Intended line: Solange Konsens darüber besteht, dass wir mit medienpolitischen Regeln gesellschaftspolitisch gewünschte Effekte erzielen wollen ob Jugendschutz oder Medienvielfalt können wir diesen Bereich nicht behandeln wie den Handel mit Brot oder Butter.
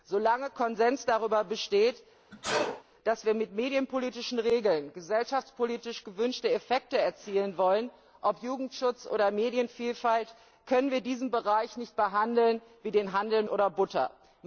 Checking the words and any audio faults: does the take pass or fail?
fail